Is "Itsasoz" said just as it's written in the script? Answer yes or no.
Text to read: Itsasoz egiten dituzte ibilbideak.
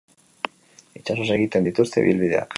yes